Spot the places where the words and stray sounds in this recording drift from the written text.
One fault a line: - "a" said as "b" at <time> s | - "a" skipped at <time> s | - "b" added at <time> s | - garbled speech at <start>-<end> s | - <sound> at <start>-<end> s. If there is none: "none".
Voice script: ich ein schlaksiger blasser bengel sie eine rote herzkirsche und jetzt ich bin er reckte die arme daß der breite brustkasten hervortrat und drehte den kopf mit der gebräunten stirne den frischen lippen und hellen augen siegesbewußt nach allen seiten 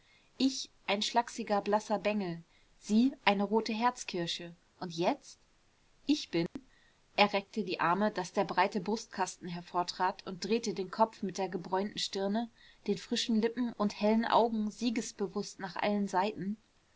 - dropout at 6.5-6.6 s